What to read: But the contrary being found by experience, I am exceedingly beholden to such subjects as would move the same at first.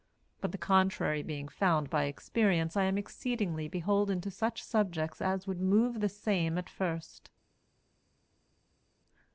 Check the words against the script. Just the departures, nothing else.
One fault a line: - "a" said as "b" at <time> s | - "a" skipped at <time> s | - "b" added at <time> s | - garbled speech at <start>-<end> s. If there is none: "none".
none